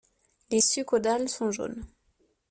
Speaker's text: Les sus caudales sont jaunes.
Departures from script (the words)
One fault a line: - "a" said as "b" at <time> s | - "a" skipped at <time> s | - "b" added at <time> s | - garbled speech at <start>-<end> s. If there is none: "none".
none